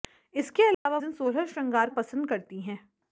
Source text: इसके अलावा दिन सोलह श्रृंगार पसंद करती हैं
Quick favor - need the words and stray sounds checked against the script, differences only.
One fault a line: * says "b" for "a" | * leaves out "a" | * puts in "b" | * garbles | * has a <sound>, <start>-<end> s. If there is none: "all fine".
* has a dropout, 0.7-0.9 s